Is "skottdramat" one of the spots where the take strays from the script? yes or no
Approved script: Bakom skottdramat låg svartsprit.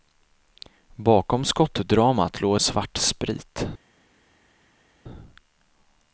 no